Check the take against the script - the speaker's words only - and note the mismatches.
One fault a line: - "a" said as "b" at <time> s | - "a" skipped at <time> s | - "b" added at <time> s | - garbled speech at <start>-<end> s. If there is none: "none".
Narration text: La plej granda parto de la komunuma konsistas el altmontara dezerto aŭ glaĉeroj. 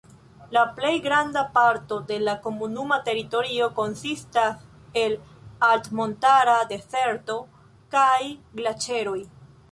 - "teritorio" added at 3.1 s
- "aŭ" said as "kaj" at 8.0 s